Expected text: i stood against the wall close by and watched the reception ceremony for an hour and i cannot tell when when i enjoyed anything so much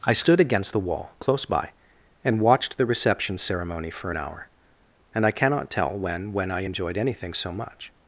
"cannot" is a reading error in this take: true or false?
false